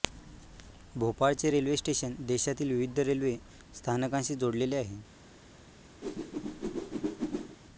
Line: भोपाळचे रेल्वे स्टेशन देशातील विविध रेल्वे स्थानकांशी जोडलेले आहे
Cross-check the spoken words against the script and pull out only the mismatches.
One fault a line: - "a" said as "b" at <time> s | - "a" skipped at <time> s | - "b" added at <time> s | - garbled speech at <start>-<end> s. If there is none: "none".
none